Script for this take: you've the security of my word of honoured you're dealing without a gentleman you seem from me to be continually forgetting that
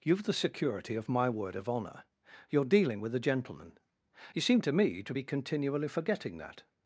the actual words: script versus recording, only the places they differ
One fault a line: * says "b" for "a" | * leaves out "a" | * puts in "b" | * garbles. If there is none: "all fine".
* says "honour" for "honoured"
* says "with" for "without"
* says "to" for "from"